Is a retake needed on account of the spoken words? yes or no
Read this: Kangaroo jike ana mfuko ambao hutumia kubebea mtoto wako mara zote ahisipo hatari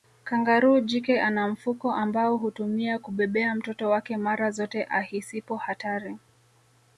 yes